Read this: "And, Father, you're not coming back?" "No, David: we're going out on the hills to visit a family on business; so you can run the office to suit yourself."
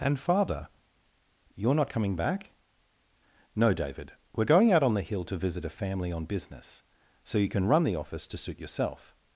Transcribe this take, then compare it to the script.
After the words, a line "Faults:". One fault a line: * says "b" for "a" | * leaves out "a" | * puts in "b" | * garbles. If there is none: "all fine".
"And, Father, you're not coming back?" "No, David: we're going out on the hill to visit a family on business; so you can run the office to suit yourself."
Faults:
* says "hill" for "hills"